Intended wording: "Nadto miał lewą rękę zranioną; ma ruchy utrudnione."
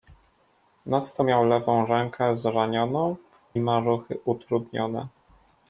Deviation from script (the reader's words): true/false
false